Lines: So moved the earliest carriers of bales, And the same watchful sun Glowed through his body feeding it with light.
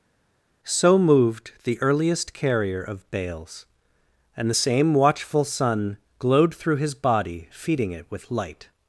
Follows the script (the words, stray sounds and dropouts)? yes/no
no